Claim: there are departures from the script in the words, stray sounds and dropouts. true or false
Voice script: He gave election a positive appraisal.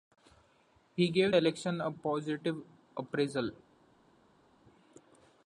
false